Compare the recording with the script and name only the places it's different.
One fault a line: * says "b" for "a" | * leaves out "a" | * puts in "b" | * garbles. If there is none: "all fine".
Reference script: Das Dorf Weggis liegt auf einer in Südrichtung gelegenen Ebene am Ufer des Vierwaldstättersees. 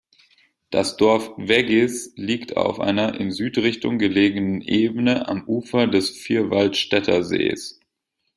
all fine